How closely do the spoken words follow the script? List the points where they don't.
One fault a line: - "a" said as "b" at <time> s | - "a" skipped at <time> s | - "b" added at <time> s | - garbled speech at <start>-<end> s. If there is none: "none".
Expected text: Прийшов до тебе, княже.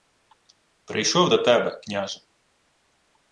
none